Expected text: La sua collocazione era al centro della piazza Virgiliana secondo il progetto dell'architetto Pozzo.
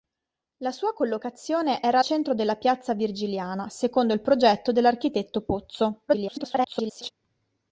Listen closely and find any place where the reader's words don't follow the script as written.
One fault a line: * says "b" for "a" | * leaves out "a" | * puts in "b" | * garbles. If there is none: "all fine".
* leaves out "al"
* garbles